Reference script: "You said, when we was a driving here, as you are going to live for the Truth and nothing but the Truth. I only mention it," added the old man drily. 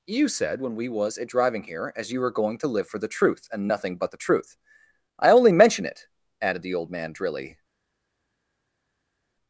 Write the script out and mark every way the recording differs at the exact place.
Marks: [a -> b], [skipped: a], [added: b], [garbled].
"You said, when we was a driving here, as you [are -> were] going to live for the Truth and nothing but the Truth. I only mention it," added the old man drily.